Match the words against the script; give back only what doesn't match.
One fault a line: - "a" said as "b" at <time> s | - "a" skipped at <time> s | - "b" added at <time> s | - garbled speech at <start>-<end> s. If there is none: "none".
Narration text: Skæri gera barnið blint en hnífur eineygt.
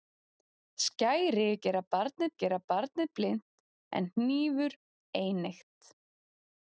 - "gera barnið" added at 2.4 s